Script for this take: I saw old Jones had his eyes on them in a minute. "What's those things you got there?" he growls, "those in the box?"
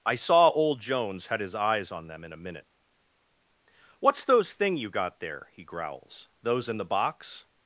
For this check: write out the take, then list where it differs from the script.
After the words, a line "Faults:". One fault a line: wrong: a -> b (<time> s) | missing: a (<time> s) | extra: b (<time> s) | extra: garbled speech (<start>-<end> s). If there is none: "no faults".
I saw old Jones had his eyes on them in a minute. "What's those thing you got there?" he growls, "those in the box?"
Faults:
wrong: things -> thing (4.5 s)